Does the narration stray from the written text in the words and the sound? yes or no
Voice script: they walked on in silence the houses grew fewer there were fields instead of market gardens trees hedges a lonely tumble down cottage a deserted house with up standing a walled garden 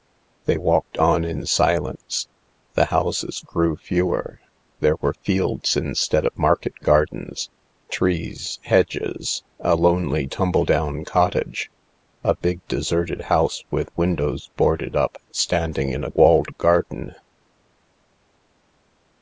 yes